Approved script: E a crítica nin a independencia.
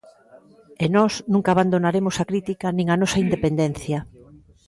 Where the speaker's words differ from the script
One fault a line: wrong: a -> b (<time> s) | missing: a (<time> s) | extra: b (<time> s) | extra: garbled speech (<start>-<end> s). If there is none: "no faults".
extra: nós nunca abandonaremos (0.9 s)
extra: nosa (3.0 s)